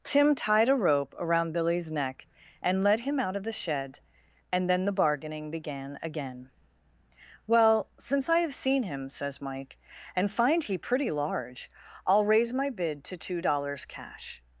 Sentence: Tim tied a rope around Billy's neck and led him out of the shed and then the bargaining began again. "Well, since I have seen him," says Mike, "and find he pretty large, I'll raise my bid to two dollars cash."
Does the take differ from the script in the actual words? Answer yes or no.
no